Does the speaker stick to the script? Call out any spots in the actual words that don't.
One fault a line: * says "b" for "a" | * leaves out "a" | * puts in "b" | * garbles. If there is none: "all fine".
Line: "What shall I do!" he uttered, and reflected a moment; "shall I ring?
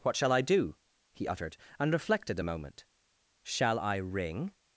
all fine